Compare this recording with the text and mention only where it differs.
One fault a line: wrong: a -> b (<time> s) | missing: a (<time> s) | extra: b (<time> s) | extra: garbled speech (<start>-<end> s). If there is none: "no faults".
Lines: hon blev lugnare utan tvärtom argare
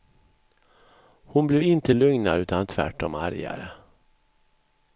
extra: inte (1.6 s)